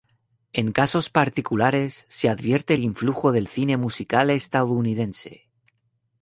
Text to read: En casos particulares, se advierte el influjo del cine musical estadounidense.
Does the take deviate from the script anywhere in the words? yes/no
no